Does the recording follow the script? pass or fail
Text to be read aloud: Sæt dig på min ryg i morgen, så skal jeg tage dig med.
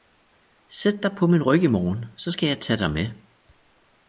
pass